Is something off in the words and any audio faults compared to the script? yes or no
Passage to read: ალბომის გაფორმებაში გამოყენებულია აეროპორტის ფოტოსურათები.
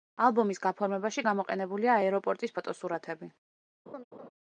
yes